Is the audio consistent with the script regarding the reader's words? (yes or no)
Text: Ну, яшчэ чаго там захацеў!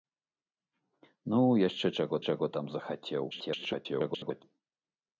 no